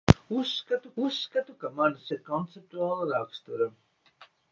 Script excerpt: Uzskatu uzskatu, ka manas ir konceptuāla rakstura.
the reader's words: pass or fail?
pass